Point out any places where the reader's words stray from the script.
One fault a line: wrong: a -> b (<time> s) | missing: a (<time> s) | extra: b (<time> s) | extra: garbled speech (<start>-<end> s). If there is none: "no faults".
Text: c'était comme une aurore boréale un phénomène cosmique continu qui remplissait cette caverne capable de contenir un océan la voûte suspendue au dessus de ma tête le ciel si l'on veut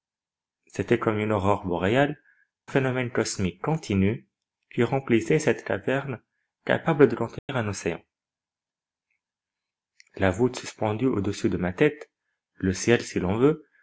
missing: un (2.2 s)